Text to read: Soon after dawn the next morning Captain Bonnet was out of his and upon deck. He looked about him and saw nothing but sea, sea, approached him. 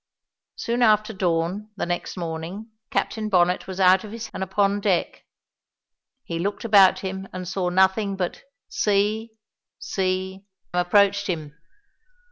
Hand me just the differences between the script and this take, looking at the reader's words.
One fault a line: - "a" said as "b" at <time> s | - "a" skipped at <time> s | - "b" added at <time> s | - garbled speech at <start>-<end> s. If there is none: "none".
none